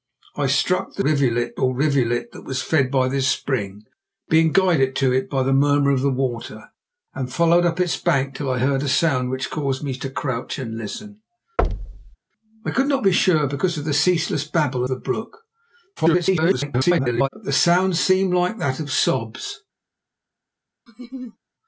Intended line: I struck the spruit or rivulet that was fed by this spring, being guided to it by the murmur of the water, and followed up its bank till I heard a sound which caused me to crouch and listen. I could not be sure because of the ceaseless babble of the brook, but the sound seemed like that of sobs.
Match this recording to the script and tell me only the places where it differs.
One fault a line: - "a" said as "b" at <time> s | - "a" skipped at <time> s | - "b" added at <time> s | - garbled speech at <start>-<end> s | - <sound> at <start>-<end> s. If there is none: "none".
- "spruit" said as "rivulet" at 1.0 s
- thud at 11.6-12.2 s
- "of" skipped at 14.8 s
- garbled speech at 16.0-17.3 s
- laugh at 20.9-21.4 s